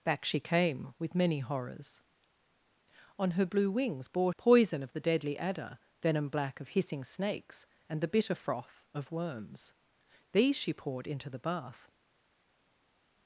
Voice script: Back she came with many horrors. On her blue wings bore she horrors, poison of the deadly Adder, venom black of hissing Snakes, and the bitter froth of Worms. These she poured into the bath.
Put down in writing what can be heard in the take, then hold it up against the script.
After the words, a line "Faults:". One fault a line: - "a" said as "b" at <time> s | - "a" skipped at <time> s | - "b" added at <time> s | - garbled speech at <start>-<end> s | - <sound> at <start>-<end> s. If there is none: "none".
Back she came with many horrors. On her blue wings bore poison of the deadly Adder, venom black of hissing Snakes, and the bitter froth of Worms. These she poured into the bath.
Faults:
- "she horrors" skipped at 4.3 s